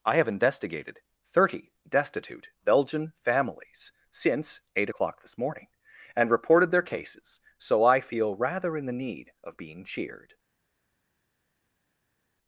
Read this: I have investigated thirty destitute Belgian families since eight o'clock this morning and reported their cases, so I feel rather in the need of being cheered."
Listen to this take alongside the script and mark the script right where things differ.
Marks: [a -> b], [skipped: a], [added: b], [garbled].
I have investigated thirty destitute Belgian families since eight o'clock this morning and reported their cases, so I feel rather in the need of being cheered."